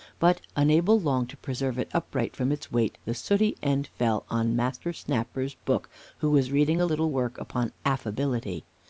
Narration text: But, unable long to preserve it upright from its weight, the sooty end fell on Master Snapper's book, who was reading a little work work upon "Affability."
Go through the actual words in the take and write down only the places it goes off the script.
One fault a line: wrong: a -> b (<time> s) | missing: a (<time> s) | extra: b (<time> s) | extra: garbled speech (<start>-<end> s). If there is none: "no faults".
missing: work (7.4 s)